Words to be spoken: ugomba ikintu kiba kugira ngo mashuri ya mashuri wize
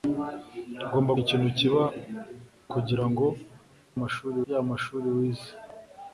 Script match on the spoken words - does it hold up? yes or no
yes